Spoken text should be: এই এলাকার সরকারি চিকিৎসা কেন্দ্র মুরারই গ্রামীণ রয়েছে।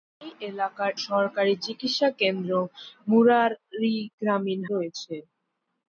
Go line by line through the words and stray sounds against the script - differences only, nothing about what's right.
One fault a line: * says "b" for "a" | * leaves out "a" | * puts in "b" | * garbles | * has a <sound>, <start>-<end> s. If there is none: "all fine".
all fine